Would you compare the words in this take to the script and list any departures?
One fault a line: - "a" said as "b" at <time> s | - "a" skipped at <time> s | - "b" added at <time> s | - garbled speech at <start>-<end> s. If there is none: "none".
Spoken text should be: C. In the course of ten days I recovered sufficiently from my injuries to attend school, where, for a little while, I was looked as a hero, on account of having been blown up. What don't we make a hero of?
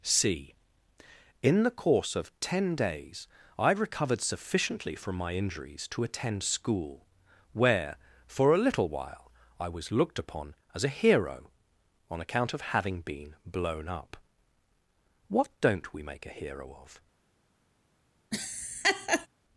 - "upon" added at 10.2 s